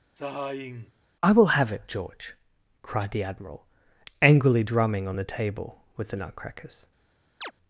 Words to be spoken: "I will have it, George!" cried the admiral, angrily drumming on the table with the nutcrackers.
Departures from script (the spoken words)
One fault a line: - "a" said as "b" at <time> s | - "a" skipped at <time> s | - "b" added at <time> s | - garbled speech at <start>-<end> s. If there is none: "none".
none